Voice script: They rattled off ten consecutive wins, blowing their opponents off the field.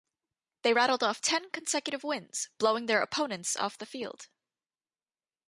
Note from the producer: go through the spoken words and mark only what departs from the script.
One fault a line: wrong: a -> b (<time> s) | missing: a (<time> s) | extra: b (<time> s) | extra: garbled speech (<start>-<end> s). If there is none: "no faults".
no faults